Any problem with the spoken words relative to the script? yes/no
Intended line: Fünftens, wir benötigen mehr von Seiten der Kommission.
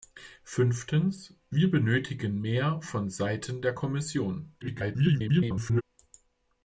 yes